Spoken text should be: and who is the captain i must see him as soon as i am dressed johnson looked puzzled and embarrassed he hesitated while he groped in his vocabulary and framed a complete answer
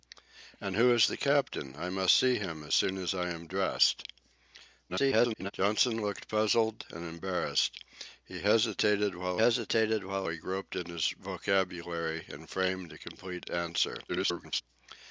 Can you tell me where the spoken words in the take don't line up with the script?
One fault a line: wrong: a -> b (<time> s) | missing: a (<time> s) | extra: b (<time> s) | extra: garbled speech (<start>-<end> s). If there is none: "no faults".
extra: garbled speech (4.9-5.5 s)
extra: hesitated while (9.3 s)
extra: garbled speech (14.1-14.6 s)